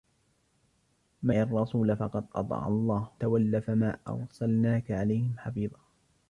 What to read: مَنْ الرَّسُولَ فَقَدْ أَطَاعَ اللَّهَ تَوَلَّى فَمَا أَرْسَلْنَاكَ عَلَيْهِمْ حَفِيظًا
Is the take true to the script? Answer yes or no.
yes